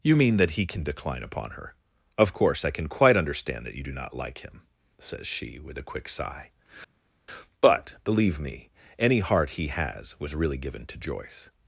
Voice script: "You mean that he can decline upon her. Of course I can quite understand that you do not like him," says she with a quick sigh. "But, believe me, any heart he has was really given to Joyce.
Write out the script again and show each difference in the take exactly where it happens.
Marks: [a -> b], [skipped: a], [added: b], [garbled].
"You mean that he can decline upon her. Of course I can quite understand that you do not like him," says she with a quick sigh. "But, believe me, any heart he has was really given to Joyce.